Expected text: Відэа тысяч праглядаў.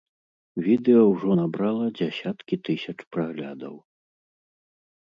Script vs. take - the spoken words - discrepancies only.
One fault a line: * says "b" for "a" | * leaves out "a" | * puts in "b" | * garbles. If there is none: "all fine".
* puts in "ўжо набрала дзясяткі"